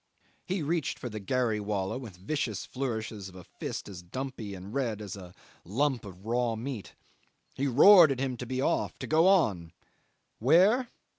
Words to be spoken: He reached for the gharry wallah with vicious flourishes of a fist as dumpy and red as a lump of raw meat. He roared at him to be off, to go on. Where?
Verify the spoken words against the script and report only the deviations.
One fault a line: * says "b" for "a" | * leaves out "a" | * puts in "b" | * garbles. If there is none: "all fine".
all fine